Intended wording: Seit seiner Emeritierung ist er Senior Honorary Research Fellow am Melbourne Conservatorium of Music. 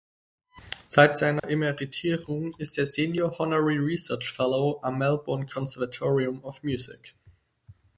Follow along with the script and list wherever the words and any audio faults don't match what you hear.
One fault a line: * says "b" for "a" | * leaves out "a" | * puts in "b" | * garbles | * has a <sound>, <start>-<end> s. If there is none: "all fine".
* has a dropout, 1.4-1.4 s